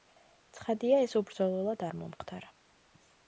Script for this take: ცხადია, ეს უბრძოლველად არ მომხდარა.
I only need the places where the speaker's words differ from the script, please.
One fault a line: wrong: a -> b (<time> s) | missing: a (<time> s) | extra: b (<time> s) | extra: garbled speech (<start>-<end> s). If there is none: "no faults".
no faults